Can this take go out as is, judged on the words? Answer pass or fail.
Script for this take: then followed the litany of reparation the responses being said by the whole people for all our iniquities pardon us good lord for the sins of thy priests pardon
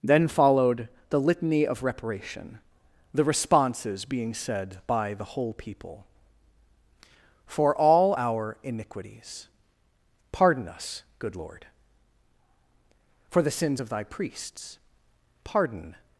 pass